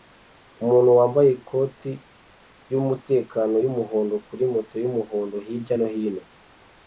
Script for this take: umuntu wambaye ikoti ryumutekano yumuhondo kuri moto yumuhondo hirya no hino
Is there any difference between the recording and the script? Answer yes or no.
no